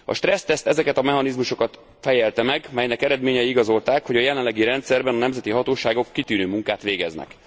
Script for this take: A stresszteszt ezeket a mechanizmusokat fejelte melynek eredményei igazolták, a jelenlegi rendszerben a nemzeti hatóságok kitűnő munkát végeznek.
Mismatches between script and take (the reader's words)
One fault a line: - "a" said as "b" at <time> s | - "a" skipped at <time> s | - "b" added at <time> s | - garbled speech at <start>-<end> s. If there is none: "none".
- "meg" added at 2.4 s
- "hogy" added at 4.1 s